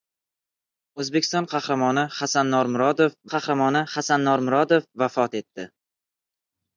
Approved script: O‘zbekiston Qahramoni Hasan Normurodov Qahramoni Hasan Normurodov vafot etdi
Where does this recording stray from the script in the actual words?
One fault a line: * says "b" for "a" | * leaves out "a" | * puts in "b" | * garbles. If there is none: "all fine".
all fine